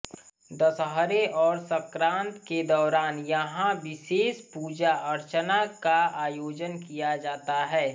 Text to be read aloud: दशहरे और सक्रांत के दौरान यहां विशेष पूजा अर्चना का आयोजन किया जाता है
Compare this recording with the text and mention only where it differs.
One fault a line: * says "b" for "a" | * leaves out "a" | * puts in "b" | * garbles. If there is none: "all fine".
all fine